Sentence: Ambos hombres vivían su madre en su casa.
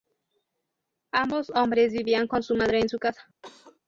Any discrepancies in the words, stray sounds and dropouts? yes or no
yes